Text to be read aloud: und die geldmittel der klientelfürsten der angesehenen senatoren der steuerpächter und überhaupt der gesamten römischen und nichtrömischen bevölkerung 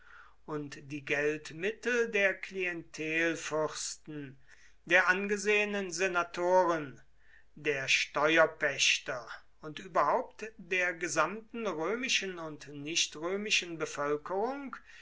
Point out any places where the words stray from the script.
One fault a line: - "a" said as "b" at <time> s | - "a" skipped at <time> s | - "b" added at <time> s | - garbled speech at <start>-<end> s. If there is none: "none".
none